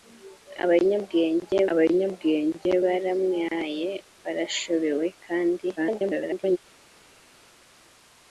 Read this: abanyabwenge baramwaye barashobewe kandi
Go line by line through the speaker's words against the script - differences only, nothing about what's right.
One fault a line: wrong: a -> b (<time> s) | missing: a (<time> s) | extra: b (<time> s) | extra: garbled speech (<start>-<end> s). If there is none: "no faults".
extra: abanyabwenge (1.7 s)
extra: garbled speech (5.8-6.6 s)